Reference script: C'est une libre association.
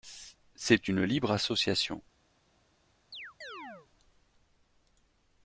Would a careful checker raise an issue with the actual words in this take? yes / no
no